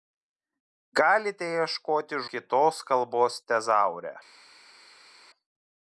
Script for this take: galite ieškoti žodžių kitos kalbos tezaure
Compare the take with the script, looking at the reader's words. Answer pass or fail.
fail